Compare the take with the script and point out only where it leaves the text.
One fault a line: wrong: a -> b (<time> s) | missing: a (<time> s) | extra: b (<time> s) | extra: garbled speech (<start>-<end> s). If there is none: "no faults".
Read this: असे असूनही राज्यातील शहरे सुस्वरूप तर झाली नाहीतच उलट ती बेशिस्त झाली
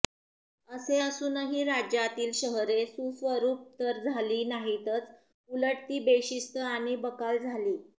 extra: आणि बकाल (6.7 s)